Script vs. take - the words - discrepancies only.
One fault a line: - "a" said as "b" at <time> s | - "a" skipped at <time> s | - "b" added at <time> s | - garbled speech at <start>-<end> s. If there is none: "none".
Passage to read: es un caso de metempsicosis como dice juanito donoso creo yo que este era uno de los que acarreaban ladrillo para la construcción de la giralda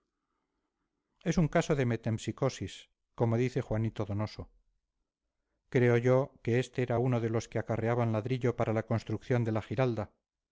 none